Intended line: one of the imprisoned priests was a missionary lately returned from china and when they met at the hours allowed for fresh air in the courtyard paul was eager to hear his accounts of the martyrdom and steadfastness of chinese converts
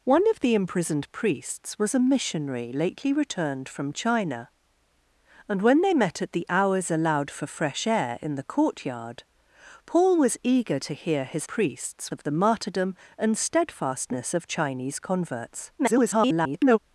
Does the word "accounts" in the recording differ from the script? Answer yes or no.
yes